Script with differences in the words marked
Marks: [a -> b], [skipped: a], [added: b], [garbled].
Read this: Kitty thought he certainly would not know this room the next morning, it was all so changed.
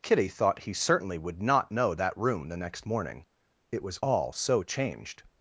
Kitty thought he certainly would not know [this -> that] room the next morning, it was all so changed.